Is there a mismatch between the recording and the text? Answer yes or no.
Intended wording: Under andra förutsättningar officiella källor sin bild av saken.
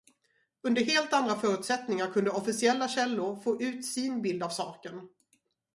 yes